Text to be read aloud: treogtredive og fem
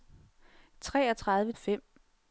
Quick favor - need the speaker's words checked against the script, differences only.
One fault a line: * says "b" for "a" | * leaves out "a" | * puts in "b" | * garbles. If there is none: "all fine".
all fine